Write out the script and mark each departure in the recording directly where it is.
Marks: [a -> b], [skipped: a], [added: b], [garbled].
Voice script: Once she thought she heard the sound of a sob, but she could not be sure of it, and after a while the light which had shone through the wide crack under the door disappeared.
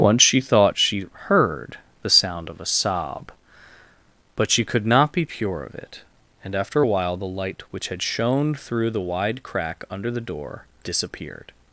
Once she thought she heard the sound of a sob, but she could not be [sure -> pure] of it, and after a while the light which had shone through the wide crack under the door disappeared.